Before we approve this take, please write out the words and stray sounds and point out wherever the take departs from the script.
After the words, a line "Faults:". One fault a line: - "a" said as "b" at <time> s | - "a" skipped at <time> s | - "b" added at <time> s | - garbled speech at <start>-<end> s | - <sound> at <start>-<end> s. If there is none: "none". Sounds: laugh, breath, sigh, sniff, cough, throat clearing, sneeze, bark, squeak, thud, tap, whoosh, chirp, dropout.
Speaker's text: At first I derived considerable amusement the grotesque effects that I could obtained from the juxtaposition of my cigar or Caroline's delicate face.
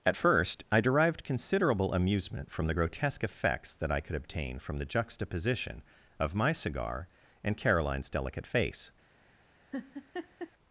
At first I derived considerable amusement from the grotesque effects that I could obtain from the juxtaposition of my cigar and Caroline's delicate face.
Faults:
- "from" added at 2.5 s
- "obtained" said as "obtain" at 4.2 s
- "or" said as "and" at 7.4 s
- laugh at 9.7-10.5 s